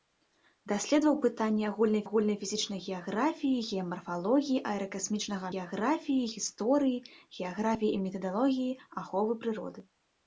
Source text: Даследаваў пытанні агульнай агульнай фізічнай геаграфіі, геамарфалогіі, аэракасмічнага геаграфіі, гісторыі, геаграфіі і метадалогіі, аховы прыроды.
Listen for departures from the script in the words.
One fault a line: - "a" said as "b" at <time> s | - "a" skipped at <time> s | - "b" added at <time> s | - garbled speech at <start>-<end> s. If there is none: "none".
none